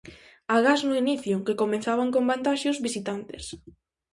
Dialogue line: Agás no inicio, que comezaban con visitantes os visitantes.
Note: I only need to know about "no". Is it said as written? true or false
true